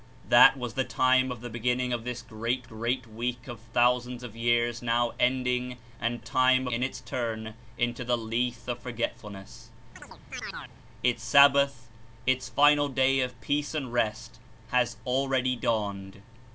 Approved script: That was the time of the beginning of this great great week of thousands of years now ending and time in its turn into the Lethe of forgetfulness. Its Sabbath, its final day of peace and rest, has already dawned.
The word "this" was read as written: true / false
true